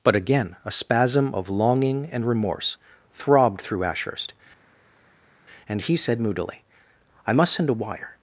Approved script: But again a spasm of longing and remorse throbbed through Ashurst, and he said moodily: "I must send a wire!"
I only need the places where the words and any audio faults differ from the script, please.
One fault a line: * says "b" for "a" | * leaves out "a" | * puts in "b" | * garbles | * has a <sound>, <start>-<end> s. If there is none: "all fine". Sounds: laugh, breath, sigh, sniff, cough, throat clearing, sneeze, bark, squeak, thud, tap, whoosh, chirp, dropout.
all fine